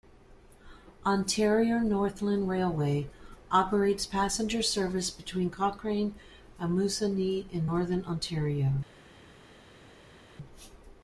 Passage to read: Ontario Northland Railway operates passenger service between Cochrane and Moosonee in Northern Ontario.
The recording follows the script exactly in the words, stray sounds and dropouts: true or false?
true